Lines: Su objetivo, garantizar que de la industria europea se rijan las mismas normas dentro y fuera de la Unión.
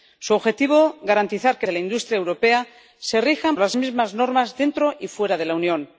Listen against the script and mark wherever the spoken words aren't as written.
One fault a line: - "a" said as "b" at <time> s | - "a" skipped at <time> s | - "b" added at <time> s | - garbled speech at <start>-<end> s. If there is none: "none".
none